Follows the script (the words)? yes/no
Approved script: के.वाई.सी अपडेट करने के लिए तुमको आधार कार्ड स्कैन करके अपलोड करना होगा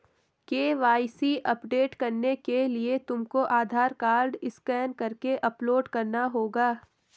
yes